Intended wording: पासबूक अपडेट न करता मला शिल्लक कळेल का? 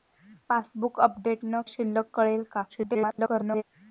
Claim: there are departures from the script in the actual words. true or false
true